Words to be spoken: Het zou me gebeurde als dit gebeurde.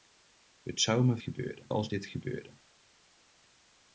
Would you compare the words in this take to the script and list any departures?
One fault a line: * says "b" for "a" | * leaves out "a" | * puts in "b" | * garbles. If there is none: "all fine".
all fine